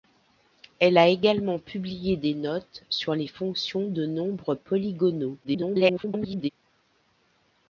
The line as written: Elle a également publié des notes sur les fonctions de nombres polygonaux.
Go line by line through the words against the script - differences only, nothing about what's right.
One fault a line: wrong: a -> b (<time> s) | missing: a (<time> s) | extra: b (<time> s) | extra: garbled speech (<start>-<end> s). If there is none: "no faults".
extra: garbled speech (5.4-6.5 s)